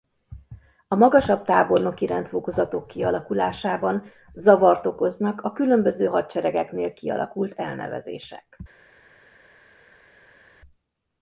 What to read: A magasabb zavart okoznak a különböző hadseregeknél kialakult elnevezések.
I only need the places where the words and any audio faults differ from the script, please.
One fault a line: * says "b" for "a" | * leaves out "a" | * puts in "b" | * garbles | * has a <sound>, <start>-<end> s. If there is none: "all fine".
* puts in "tábornoki rendfokozatok kialakulásában"